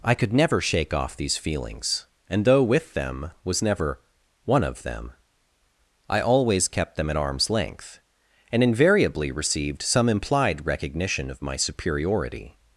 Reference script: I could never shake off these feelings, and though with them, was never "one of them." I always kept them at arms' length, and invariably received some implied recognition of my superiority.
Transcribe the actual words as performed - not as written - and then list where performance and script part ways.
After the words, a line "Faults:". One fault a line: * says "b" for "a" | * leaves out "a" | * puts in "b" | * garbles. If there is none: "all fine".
I could never shake off these feelings, and though with them, was never "one of them." I always kept them at arms' length, and invariably received some implied recognition of my superiority.
Faults:
all fine